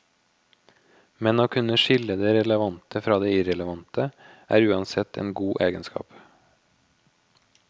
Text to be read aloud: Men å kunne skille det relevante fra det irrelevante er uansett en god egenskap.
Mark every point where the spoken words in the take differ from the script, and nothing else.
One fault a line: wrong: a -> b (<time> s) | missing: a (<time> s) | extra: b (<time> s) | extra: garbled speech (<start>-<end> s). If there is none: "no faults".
no faults